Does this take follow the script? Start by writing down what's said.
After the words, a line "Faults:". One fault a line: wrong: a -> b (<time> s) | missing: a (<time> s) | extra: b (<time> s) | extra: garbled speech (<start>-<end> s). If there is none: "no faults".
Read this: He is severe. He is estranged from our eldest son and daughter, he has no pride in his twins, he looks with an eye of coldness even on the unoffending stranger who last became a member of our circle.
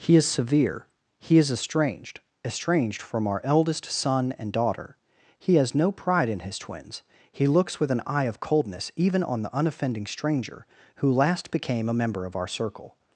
He is severe. He is estranged estranged from our eldest son and daughter, he has no pride in his twins, he looks with an eye of coldness even on the unoffending stranger who last became a member of our circle.
Faults:
extra: estranged (2.4 s)